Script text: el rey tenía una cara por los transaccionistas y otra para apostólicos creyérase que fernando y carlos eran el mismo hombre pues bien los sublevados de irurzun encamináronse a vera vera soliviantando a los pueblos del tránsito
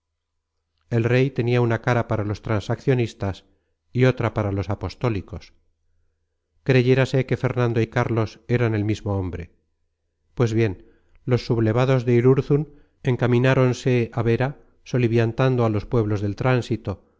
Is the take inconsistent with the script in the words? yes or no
yes